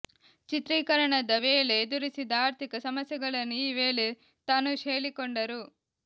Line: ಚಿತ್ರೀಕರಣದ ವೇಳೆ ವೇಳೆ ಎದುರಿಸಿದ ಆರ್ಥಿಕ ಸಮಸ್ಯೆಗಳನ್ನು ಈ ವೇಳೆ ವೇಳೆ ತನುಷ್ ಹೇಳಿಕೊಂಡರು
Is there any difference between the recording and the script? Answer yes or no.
yes